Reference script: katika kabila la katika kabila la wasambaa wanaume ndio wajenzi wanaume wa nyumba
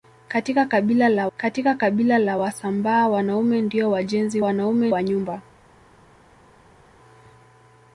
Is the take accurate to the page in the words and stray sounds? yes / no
yes